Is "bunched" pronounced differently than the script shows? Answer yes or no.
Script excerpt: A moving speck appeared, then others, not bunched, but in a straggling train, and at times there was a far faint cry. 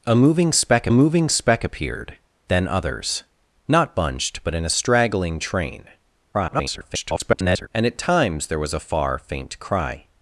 no